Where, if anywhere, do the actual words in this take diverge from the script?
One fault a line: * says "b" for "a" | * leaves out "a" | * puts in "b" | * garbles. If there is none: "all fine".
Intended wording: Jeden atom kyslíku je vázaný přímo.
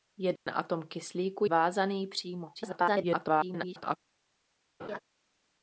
* leaves out "je"
* garbles